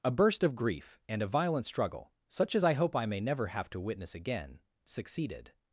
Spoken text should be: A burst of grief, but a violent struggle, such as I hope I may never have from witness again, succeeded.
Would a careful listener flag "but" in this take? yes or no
yes